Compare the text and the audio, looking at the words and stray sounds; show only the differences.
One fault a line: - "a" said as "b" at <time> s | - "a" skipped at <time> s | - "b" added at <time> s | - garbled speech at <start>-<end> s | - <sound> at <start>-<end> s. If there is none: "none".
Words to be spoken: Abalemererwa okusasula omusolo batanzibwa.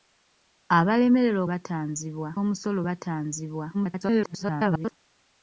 - "okusasula" said as "batanzibwa" at 1.5 s
- garbled speech at 3.7-4.9 s